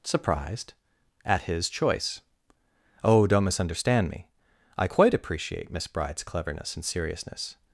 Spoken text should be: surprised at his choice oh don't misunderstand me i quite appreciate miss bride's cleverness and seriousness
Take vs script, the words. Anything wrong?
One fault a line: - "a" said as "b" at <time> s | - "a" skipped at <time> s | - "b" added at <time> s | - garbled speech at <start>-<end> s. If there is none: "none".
none